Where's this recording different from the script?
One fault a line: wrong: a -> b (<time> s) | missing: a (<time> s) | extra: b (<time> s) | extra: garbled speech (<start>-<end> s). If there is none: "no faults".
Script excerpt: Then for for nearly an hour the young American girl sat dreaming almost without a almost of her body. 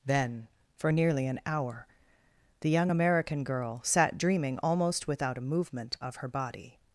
missing: for (0.9 s)
wrong: almost -> movement (5.4 s)